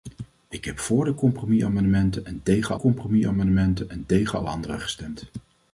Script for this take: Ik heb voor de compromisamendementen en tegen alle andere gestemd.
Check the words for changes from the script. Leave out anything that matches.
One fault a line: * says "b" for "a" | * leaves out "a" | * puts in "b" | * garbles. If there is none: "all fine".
* puts in "compromisamendementen en tegen"